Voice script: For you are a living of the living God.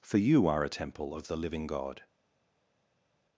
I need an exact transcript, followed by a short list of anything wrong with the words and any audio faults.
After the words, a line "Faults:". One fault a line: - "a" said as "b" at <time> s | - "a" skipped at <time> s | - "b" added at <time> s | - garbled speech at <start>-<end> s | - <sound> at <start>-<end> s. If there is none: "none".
For you are a temple of the living God.
Faults:
- "living" said as "temple" at 0.7 s